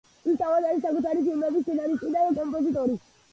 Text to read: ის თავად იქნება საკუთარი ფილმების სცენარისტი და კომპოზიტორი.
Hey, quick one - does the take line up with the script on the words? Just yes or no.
no